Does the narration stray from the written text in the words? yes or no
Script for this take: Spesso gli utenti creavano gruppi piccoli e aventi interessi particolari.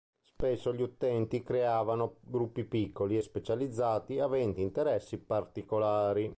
yes